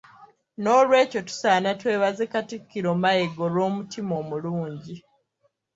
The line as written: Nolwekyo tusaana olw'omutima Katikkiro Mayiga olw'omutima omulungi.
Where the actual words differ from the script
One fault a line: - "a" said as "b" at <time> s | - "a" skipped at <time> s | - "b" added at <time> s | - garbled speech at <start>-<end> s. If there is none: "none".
- "olw'omutima" said as "twebaze" at 1.8 s